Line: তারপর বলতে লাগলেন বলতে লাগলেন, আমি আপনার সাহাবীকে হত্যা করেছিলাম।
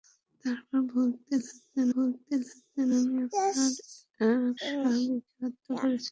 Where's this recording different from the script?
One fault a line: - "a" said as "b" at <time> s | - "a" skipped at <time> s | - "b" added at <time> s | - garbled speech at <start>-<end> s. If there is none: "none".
none